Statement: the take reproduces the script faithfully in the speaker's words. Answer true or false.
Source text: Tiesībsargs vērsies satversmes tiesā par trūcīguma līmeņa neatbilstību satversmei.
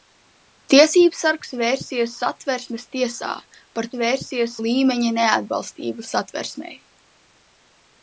false